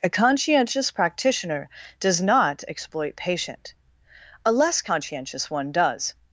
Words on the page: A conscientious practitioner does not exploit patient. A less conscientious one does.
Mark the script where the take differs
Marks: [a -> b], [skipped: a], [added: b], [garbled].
A conscientious practitioner does not exploit patient. A less conscientious one does.